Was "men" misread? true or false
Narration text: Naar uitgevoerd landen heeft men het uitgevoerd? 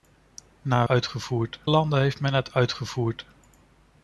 false